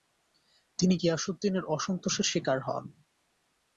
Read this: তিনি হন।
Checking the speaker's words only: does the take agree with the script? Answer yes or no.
no